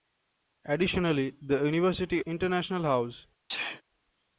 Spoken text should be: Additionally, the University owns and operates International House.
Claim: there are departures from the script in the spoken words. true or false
true